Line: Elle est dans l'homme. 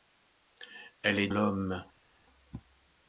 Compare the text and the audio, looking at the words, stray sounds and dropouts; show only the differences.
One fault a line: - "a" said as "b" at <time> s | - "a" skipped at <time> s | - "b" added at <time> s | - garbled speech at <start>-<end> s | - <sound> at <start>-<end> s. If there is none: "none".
- "dans" skipped at 1.3 s